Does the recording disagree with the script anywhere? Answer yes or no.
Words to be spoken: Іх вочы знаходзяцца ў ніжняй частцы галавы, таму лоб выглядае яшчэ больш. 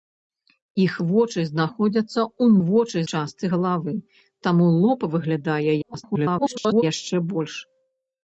yes